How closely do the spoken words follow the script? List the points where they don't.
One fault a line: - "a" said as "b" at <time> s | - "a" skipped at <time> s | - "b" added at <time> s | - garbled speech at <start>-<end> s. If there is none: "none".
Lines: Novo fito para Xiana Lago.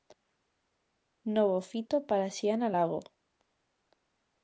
none